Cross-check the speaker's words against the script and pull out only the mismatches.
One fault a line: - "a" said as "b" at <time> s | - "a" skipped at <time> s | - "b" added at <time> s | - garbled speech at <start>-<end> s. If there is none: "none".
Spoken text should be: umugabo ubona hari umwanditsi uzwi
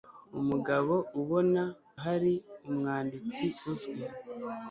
none